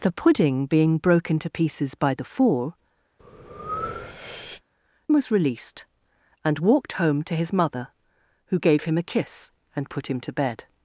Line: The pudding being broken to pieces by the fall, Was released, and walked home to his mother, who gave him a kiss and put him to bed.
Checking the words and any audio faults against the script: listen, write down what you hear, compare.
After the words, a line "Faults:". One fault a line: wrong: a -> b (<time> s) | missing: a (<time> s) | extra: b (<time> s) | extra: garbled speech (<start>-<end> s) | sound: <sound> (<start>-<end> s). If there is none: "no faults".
The pudding being broken to pieces by the fall, Was released, and walked home to his mother, who gave him a kiss and put him to bed.
Faults:
sound: breath (3.2-4.6 s)